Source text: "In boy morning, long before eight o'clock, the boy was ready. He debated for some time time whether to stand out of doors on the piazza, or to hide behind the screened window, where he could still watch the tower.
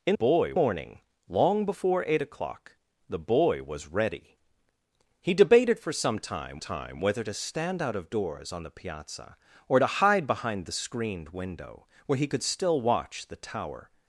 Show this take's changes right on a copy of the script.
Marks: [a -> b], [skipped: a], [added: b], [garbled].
"In boy morning, long before eight o'clock, the boy was ready. He debated for some time time whether to stand out of doors on the piazza, or to hide behind the screened window, where he could still watch the tower.